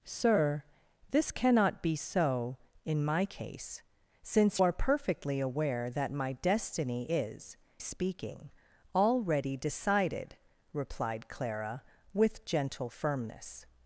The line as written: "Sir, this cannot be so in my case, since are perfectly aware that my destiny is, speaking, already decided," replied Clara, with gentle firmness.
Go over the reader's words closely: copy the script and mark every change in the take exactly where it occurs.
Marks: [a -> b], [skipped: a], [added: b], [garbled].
"Sir, this cannot be so in my case, since are perfectly aware that my destiny is, speaking, already decided," replied Clara, with gentle firmness.